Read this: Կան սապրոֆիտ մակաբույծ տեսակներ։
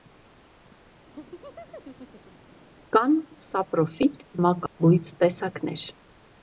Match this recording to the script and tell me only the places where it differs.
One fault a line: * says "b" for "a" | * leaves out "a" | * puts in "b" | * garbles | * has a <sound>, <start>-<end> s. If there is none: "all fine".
* has a laugh, 1.1-2.5 s
* has a dropout, 4.7-4.8 s